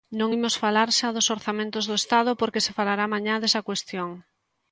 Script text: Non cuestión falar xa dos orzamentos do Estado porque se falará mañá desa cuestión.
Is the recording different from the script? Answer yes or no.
yes